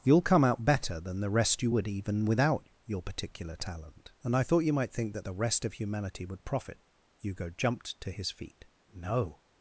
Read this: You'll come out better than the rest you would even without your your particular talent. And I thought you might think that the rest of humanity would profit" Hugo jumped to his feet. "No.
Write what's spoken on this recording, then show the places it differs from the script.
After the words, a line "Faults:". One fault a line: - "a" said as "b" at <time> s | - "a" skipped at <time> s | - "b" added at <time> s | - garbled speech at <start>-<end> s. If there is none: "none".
You'll come out better than the rest you would even without your particular talent. And I thought you might think that the rest of humanity would profit" Hugo jumped to his feet. "No.
Faults:
- "your" skipped at 3.0 s